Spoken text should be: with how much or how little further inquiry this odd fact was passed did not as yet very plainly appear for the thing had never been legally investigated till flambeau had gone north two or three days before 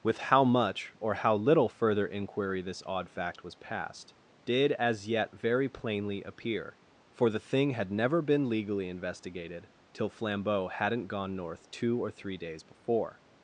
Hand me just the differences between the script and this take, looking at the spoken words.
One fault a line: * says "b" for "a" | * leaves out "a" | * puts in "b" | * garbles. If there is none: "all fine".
* leaves out "not"
* says "hadn't" for "had"